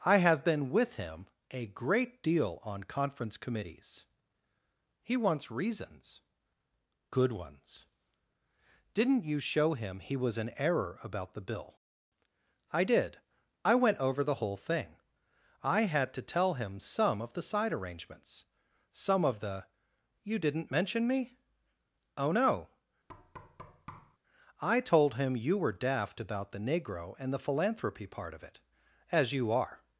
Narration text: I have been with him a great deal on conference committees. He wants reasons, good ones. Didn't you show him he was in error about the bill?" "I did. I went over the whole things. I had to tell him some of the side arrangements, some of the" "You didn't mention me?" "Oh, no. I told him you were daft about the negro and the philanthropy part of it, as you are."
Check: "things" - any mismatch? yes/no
yes